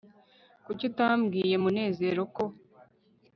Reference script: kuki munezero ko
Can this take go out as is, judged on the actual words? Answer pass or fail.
fail